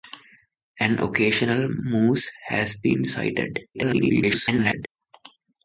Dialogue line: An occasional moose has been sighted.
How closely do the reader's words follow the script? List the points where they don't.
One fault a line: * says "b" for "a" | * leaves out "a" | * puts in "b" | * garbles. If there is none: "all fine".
* garbles